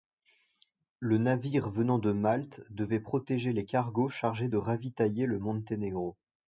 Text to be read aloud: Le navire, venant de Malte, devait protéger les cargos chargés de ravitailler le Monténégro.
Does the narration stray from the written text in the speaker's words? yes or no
no